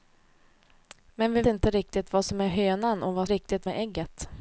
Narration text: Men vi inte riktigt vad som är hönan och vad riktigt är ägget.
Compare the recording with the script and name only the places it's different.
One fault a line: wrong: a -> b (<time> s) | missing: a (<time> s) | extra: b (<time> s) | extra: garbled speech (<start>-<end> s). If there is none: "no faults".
no faults